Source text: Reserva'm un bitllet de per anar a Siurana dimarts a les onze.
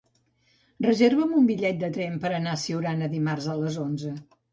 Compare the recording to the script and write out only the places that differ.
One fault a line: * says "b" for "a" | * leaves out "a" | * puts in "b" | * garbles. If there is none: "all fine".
* puts in "tren"